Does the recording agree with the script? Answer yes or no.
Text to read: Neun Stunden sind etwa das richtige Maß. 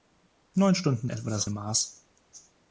no